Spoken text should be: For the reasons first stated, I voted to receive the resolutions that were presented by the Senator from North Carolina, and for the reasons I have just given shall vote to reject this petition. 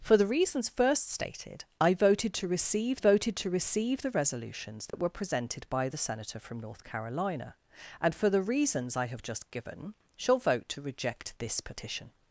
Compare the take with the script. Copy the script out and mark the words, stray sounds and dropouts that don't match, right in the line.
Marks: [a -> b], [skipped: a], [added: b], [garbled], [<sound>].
For the reasons first stated, I voted to receive [added: voted to receive] the resolutions that [dropout] were presented by the Senator from North Carolina, and for the reasons I have just given shall vote to reject this petition.